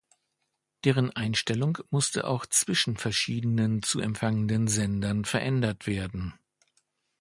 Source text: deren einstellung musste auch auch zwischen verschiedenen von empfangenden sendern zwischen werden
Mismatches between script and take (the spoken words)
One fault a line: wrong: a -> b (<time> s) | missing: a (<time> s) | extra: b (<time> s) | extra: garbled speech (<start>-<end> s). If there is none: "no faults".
missing: auch (2.5 s)
wrong: von -> zu (3.8 s)
wrong: zwischen -> verändert (5.3 s)